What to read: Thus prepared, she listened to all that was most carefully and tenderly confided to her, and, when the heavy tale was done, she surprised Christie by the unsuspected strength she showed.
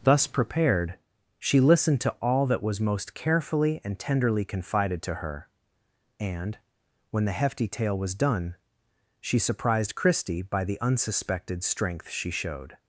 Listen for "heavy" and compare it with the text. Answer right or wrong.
wrong